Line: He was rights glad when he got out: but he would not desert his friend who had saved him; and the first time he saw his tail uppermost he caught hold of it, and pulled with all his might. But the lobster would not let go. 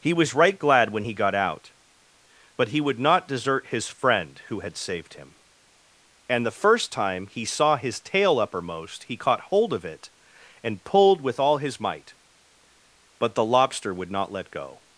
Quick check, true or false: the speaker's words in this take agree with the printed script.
false